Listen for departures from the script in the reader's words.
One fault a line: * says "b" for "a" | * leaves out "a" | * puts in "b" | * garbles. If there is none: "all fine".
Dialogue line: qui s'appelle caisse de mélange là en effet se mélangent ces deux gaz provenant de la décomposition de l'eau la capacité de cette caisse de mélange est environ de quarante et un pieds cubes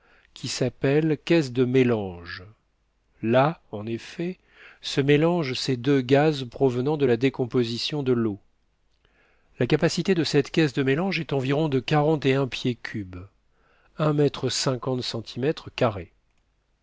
all fine